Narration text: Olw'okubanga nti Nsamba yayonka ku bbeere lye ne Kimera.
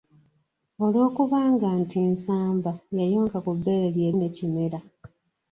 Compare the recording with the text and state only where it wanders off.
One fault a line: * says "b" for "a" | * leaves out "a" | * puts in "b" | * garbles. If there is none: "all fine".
all fine